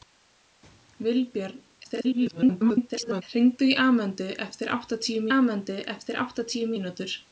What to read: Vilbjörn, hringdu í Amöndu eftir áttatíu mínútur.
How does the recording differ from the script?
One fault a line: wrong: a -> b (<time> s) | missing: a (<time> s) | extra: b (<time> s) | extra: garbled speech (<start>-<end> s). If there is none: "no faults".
extra: garbled speech (1.8-3.2 s)
extra: Amöndu eftir áttatíu (5.4 s)